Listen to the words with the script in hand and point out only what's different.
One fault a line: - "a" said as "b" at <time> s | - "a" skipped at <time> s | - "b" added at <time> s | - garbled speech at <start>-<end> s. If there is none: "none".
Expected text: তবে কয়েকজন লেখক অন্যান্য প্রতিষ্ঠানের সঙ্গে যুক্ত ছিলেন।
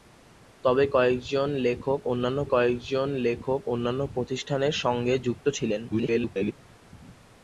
- "কয়েকজন লেখক অন্যান্য" added at 2.4 s
- garbled speech at 5.9-6.5 s